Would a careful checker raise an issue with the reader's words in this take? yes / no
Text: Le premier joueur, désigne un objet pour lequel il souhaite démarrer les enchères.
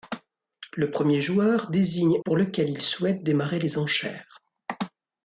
yes